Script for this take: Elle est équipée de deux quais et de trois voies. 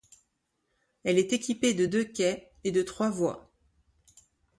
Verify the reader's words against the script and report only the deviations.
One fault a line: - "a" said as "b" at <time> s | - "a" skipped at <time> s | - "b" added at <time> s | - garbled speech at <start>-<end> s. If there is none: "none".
none